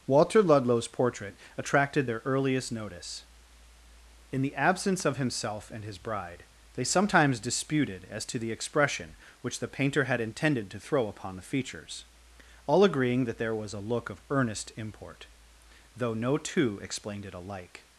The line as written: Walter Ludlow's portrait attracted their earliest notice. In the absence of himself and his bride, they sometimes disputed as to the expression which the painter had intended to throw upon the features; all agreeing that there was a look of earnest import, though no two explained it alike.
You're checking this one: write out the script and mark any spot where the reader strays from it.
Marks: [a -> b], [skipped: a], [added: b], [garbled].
Walter Ludlow's portrait attracted their earliest notice. In the absence of himself and his bride, they sometimes disputed as to the expression which the painter had intended to throw upon the features; all agreeing that there was a look of earnest import, though no two explained it alike.